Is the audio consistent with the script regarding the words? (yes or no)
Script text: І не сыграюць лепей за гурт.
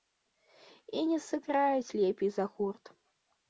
yes